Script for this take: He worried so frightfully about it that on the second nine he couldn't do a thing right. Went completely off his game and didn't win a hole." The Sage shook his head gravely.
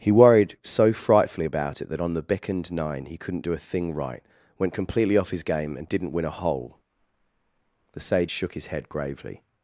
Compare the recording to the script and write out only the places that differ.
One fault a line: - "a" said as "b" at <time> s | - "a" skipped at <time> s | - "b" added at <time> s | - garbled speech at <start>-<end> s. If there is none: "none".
- "second" said as "beckoned" at 2.2 s